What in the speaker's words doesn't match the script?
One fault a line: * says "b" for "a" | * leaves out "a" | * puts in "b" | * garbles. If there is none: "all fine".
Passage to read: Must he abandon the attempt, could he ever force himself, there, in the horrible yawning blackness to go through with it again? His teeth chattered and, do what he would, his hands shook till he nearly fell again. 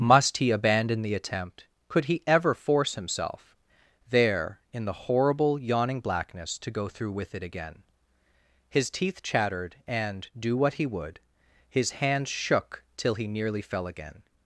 all fine